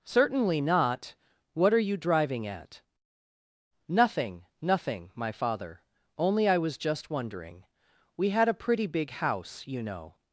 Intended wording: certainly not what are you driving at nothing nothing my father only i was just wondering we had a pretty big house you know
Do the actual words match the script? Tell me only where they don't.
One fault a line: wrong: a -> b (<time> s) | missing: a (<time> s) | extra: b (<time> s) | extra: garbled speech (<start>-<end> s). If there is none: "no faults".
no faults